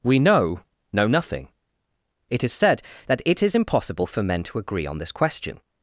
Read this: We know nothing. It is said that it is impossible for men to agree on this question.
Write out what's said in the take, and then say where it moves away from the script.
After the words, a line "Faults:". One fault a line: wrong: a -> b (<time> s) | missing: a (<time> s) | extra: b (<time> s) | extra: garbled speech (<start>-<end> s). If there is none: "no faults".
We know know nothing. It is said that it is impossible for men to agree on this question.
Faults:
extra: know (0.9 s)